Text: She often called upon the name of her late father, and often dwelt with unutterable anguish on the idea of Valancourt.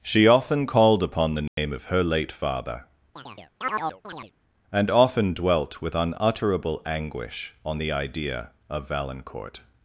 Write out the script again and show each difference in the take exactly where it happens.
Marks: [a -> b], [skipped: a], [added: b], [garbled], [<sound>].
She often called upon the name [dropout] of her late father, [chirp] and often dwelt with unutterable anguish on the idea of Valancourt.